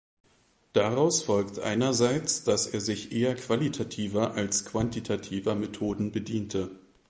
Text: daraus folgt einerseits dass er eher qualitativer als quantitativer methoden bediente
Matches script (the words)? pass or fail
fail